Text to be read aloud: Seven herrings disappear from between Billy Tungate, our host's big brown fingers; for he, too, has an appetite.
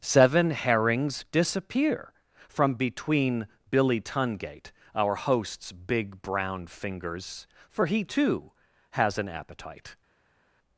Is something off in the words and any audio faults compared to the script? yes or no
no